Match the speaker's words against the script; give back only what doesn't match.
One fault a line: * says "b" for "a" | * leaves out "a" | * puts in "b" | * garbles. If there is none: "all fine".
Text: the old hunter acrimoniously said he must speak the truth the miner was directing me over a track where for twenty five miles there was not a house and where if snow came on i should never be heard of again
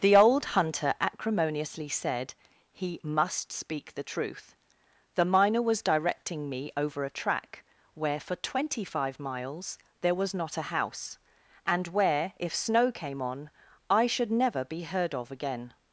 all fine